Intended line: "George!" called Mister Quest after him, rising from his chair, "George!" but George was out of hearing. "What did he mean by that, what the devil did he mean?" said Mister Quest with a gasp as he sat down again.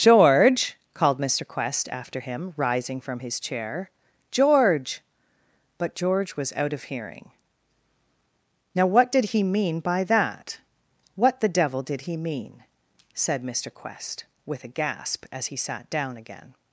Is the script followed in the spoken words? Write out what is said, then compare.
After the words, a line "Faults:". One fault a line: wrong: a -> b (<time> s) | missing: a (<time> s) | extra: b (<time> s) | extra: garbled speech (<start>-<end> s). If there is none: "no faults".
"George!" called Mister Quest after him, rising from his chair, "George!" but George was out of hearing. "Now what did he mean by that, what the devil did he mean?" said Mister Quest with a gasp as he sat down again.
Faults:
extra: Now (8.7 s)